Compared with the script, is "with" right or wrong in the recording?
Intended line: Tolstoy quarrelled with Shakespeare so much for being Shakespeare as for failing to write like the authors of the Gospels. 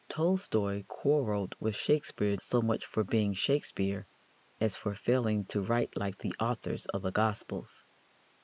right